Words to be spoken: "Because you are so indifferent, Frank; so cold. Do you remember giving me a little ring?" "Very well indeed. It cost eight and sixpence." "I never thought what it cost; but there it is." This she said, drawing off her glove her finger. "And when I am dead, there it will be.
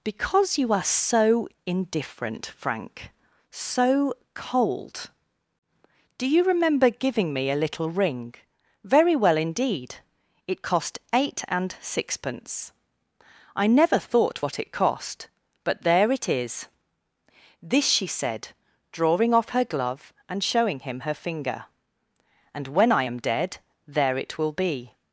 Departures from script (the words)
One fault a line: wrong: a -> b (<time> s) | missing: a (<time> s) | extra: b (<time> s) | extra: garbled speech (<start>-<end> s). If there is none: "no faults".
extra: and showing him (20.3 s)